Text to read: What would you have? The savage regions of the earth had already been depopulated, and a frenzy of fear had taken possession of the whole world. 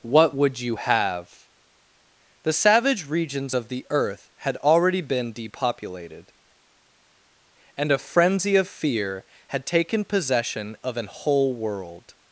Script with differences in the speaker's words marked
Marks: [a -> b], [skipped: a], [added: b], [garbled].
What would you have? The savage regions of the earth had already been depopulated, and a frenzy of fear had taken possession of [the -> an] whole world.